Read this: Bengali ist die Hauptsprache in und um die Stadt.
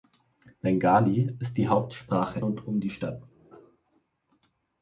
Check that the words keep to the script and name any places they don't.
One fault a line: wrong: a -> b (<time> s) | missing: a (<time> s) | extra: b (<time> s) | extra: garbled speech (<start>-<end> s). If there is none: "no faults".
missing: in (2.4 s)